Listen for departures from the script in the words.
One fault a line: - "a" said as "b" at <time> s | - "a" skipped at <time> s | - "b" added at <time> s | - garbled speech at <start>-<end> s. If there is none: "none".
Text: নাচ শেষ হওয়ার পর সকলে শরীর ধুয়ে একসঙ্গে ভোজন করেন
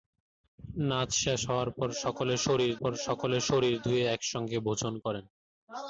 - "পর সকলে শরীর" added at 2.8 s